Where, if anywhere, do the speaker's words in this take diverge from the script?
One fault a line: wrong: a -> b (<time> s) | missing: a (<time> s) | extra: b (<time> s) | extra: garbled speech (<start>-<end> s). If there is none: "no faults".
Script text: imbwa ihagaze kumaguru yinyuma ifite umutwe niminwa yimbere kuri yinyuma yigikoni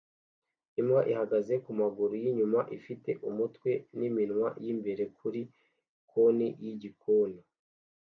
wrong: yinyuma -> konti (6.1 s)